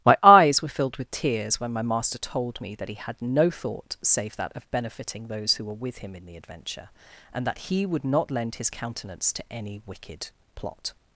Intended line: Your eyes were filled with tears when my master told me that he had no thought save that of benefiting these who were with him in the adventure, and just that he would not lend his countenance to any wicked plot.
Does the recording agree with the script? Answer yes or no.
no